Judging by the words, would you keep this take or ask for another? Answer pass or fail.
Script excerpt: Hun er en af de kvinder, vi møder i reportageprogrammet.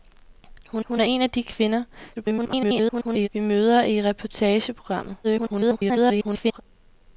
fail